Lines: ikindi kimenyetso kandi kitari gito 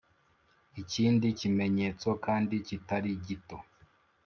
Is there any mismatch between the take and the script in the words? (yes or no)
no